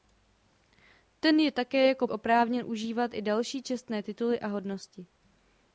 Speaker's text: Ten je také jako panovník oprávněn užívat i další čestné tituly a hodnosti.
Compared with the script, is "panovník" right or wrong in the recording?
wrong